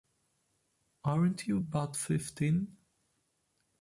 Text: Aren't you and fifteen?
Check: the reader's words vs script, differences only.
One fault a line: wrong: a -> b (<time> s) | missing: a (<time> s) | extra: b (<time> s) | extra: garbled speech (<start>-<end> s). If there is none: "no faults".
wrong: and -> but (1.6 s)